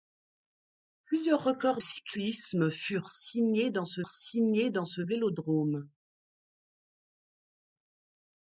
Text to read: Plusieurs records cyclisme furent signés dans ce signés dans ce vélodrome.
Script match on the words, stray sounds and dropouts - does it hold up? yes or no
yes